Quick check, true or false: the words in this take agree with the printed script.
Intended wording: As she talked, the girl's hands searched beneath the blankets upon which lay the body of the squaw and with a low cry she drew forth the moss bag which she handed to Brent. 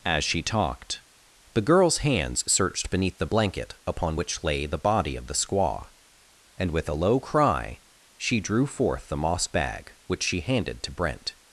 false